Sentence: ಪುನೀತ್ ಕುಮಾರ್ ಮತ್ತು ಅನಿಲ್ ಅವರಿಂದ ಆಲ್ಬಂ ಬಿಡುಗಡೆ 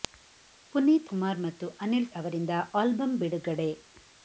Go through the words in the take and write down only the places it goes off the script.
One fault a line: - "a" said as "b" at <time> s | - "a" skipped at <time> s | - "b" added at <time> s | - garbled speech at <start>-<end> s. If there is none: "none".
none